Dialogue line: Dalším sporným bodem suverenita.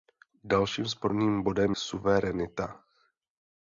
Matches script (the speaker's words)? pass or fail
pass